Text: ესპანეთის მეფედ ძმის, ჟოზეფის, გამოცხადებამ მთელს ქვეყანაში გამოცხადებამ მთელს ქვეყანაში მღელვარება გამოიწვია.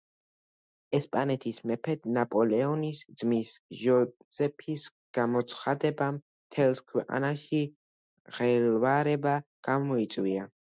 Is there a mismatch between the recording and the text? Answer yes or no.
yes